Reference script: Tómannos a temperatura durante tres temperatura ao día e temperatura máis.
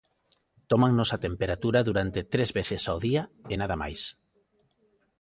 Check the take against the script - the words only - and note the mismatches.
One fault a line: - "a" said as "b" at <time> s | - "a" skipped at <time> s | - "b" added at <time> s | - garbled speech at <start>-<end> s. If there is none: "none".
- "temperatura" said as "veces" at 2.6 s
- "temperatura" said as "nada" at 3.6 s